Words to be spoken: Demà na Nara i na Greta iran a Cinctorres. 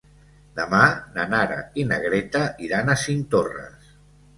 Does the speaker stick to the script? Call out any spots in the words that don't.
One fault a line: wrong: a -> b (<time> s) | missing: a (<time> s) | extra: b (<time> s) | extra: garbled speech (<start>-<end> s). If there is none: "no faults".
no faults